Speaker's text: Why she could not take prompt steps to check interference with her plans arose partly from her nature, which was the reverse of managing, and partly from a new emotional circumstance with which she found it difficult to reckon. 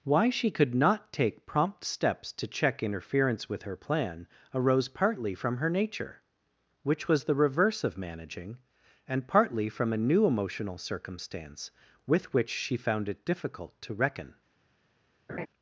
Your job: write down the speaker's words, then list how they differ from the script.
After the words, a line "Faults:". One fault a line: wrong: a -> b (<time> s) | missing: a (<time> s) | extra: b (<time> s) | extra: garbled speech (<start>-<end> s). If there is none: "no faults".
Why she could not take prompt steps to check interference with her plan arose partly from her nature, which was the reverse of managing, and partly from a new emotional circumstance with which she found it difficult to reckon.
Faults:
wrong: plans -> plan (3.8 s)